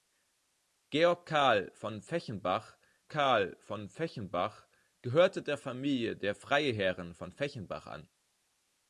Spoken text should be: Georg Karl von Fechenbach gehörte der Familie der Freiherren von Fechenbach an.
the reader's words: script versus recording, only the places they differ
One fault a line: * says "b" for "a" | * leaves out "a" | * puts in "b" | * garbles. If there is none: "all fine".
* puts in "Karl von Fechenbach"